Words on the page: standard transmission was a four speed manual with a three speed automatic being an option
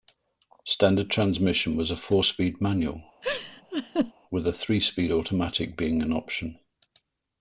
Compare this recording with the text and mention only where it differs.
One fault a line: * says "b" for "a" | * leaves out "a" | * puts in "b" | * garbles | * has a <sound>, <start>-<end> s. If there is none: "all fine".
* has a laugh, 3.2-4.1 s